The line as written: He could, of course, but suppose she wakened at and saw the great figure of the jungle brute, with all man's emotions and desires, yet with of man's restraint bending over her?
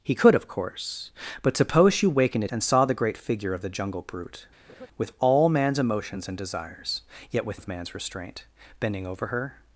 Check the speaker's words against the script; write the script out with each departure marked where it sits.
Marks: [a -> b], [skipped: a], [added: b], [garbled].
He could, of course, but suppose she wakened at and saw the great figure of the jungle brute, with all man's emotions and desires, yet with of man's restraint bending over her?